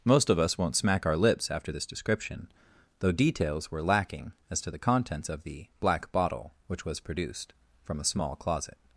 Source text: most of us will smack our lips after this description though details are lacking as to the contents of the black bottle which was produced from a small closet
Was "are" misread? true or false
true